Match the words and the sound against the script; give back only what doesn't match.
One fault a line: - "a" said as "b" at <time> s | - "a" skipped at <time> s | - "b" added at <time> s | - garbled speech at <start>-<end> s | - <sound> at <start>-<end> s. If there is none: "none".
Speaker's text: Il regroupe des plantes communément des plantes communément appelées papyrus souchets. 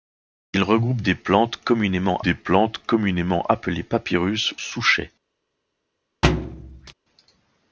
- thud at 6.2-6.9 s